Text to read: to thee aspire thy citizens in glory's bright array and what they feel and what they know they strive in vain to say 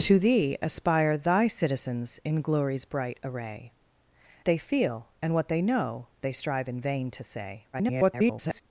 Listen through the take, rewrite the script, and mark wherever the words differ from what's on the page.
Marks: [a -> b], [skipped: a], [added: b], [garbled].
to thee aspire thy citizens in glory's bright array [skipped: and what] they feel and what they know they strive in vain to say [garbled]